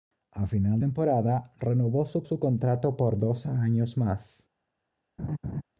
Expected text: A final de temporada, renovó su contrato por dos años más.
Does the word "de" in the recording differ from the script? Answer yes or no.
yes